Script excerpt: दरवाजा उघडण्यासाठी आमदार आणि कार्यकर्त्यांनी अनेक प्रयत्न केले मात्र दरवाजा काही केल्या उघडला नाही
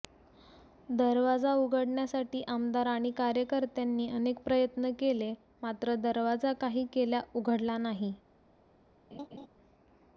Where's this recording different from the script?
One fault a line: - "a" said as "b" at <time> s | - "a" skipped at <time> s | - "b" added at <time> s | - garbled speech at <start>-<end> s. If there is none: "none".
none